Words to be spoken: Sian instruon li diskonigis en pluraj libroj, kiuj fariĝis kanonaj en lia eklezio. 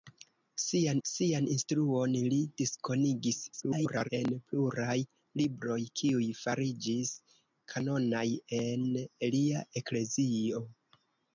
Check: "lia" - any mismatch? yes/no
no